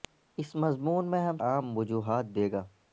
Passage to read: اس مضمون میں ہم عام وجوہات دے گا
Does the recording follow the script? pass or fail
pass